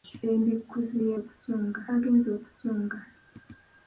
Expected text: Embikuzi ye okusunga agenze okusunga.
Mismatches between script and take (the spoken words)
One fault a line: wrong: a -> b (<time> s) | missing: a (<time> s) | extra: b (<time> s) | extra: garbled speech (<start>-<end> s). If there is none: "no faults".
no faults